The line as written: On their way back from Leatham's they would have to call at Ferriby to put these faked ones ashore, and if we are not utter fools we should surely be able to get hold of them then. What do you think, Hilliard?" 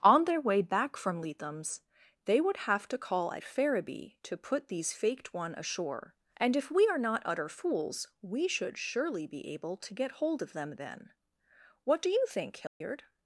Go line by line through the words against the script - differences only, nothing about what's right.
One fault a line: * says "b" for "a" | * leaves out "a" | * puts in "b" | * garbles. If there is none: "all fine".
* says "one" for "ones"